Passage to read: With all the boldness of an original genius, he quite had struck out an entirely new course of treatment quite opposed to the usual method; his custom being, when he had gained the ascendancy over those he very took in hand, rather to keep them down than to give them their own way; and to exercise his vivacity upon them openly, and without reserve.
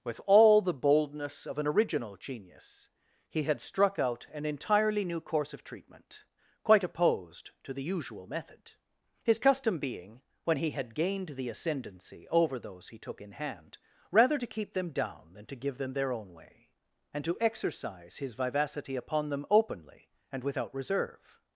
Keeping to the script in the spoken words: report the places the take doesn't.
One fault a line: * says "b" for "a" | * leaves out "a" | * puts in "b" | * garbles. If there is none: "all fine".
* leaves out "quite"
* leaves out "very"